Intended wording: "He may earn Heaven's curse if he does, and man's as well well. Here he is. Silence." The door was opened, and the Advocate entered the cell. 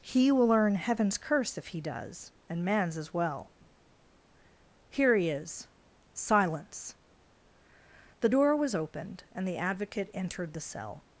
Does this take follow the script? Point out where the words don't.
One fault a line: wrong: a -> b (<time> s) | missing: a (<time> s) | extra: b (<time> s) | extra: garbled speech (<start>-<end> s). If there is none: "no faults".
wrong: may -> will (0.3 s)
missing: well (3.5 s)